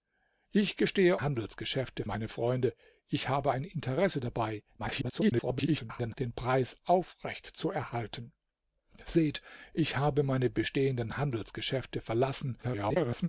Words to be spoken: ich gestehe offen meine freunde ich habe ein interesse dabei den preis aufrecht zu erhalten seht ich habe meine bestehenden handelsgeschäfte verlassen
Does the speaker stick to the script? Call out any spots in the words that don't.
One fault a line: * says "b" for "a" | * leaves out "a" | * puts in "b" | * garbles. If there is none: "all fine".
* says "handelsgeschäfte" for "offen"
* garbles
* garbles